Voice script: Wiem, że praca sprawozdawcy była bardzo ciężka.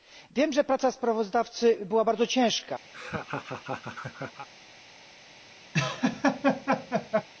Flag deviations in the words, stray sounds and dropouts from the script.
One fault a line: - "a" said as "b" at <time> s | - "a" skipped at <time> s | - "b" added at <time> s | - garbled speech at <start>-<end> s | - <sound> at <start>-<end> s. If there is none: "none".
- laugh at 2.9-4.5 s
- laugh at 5.7-7.3 s